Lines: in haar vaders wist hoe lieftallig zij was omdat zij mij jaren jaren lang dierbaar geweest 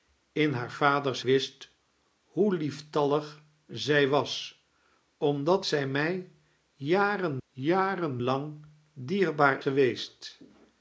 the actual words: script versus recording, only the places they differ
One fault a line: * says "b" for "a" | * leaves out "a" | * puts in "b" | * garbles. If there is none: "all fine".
all fine